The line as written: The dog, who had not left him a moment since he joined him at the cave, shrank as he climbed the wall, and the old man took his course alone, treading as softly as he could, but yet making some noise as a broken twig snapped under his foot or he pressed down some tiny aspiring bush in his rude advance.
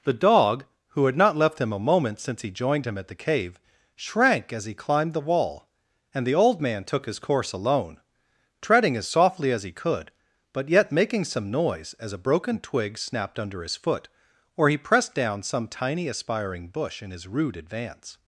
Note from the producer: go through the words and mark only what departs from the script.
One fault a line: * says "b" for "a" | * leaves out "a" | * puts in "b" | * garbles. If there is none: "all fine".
all fine